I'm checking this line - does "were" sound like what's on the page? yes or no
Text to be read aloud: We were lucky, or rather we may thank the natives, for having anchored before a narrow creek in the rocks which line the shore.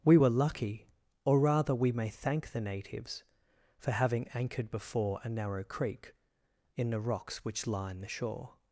yes